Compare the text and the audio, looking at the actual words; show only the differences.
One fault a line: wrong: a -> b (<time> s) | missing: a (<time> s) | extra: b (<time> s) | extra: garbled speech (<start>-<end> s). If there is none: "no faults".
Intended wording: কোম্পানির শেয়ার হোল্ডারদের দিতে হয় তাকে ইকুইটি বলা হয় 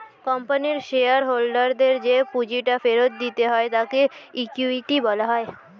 extra: যে পুঁজিটা ফেরত (2.0 s)